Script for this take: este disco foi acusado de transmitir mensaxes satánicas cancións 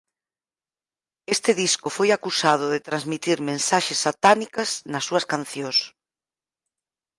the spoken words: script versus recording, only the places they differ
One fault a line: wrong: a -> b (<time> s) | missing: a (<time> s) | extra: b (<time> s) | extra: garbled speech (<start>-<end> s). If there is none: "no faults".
extra: nas súas (4.9 s)